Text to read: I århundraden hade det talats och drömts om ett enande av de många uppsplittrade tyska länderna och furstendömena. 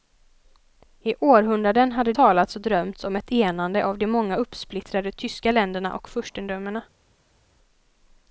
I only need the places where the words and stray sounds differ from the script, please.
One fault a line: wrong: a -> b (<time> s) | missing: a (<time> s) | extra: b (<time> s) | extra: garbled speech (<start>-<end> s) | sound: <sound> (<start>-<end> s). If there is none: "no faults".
missing: det (2.1 s)